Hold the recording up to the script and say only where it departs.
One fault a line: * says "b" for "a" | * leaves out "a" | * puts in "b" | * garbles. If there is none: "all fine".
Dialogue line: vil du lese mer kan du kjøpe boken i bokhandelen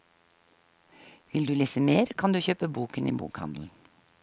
all fine